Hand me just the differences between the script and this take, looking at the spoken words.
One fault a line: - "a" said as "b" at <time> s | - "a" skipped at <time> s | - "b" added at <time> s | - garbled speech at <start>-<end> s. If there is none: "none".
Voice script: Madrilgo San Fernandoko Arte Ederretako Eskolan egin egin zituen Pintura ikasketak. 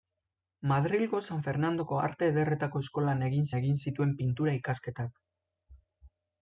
none